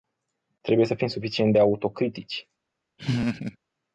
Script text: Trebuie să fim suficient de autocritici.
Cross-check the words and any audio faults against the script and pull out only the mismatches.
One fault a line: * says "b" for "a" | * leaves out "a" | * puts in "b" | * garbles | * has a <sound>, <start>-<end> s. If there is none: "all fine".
* has a laugh, 3.0-3.6 s